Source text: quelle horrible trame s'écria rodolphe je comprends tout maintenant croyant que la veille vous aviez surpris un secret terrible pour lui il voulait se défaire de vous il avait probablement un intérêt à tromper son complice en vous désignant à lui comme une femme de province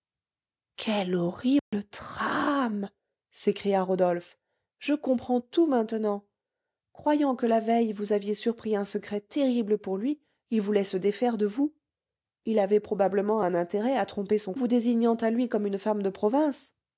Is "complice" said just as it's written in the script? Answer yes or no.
no